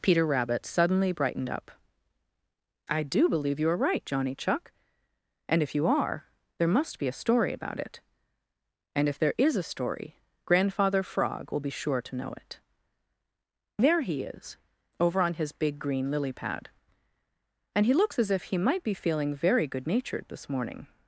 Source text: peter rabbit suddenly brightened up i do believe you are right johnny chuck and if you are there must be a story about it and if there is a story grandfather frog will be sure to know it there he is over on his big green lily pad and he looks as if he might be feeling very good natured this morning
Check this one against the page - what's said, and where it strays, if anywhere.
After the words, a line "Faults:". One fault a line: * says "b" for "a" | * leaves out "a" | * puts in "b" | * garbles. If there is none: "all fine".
peter rabbit suddenly brightened up i do believe you are right johnny chuck and if you are there must be a story about it and if there is a story grandfather frog will be sure to know it there he is over on his big green lily pad and he looks as if he might be feeling very good natured this morning
Faults:
all fine